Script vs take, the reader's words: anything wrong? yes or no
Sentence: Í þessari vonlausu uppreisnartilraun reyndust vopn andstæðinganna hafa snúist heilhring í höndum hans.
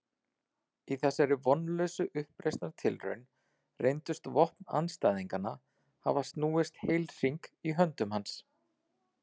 no